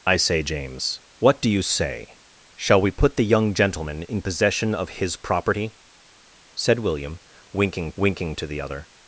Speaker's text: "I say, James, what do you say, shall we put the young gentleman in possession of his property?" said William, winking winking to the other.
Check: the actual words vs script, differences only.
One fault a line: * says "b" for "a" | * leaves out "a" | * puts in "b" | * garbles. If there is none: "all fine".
all fine